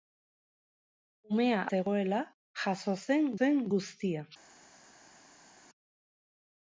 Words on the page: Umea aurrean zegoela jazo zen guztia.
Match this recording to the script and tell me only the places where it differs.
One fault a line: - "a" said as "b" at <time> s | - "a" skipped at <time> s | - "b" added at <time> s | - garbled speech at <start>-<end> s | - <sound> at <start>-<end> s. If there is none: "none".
- "aurrean" skipped at 1.6 s
- "zen" added at 3.4 s